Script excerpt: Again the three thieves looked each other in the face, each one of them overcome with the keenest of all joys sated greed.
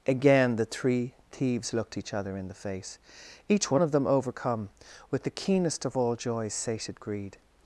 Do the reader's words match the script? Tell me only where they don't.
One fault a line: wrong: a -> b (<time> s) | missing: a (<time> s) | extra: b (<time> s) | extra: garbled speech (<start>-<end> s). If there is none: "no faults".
no faults